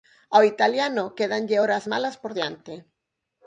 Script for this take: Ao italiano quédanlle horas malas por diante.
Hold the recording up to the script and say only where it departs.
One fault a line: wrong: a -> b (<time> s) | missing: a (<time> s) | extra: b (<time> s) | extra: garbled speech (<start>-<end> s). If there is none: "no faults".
no faults